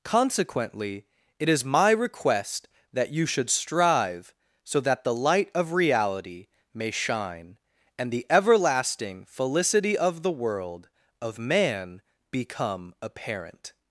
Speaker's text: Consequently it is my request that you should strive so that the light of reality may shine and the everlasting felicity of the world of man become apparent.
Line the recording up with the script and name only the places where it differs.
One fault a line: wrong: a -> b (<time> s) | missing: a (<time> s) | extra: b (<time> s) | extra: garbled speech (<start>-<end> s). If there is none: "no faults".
no faults